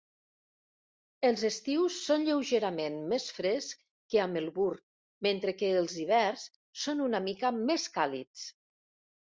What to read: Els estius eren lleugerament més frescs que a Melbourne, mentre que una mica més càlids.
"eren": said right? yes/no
no